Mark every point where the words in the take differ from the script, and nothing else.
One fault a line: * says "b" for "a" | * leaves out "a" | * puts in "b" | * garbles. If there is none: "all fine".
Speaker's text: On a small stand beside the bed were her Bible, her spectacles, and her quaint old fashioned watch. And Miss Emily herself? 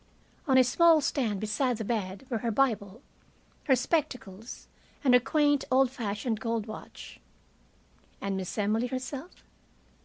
* puts in "gold"